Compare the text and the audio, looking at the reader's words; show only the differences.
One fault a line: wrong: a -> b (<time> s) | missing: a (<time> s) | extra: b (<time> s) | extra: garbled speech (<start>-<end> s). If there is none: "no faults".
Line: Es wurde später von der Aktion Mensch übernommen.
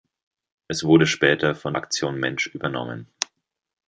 missing: der (1.8 s)